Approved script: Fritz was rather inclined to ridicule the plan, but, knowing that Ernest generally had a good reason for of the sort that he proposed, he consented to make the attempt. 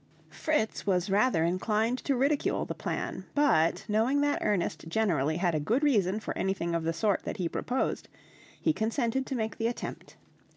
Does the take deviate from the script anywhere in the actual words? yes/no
yes